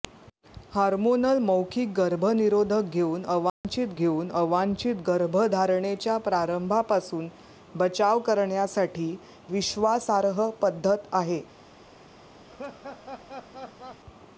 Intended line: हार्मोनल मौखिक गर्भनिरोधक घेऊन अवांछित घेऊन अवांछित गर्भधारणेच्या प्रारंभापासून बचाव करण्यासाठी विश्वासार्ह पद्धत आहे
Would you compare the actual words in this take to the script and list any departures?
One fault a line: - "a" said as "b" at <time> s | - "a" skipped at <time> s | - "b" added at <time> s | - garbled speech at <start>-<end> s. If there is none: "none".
none